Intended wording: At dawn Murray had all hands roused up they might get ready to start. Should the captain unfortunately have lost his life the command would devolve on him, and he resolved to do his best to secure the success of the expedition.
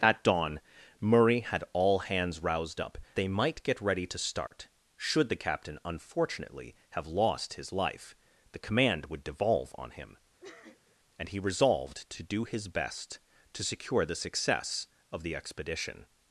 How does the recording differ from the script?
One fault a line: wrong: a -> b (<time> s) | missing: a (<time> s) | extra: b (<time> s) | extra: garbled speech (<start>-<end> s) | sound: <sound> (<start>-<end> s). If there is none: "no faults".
sound: dropout (4.5-4.5 s)
sound: sniff (10.4-11.0 s)